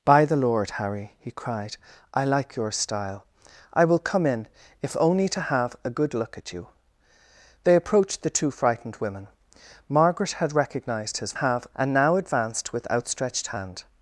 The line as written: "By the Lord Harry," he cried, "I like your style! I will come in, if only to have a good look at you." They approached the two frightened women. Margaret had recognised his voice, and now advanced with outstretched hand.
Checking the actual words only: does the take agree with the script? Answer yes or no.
no